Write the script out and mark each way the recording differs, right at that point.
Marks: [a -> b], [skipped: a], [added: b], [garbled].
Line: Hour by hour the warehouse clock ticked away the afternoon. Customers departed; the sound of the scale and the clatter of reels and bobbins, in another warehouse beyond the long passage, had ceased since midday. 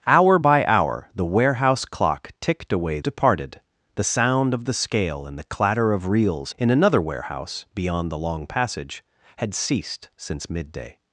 Hour by hour the warehouse clock ticked away [skipped: the afternoon. Customers] departed; the sound of the scale and the clatter of reels [skipped: and bobbins,] in another warehouse beyond the long passage, had ceased since midday.